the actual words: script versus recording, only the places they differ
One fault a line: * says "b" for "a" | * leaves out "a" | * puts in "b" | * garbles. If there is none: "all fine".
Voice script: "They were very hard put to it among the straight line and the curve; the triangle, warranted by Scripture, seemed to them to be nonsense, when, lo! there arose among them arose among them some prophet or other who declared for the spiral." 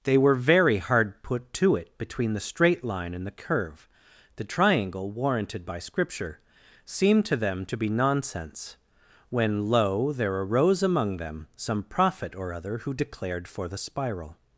* says "between" for "among"
* leaves out "arose among them"